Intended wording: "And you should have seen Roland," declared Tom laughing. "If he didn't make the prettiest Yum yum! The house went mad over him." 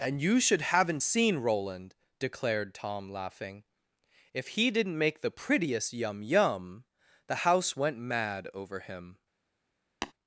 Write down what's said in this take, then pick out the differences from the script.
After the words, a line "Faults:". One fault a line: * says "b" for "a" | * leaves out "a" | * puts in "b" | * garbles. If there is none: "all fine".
"And you should haven't seen Roland," declared Tom laughing. "If he didn't make the prettiest Yum yum! The house went mad over him."
Faults:
* says "haven't" for "have"